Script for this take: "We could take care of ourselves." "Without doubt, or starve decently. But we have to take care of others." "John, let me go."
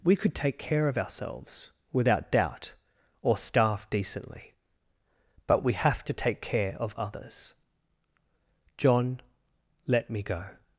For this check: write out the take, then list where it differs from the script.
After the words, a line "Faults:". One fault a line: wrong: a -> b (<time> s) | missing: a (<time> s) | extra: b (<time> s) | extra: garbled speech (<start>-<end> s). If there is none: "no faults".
"We could take care of ourselves." "Without doubt, or starve decently. But we have to take care of others." "John, let me go."
Faults:
no faults